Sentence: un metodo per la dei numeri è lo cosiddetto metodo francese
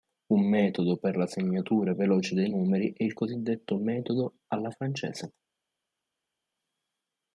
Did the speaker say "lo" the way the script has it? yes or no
no